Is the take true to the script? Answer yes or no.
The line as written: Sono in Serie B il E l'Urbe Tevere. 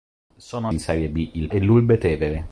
yes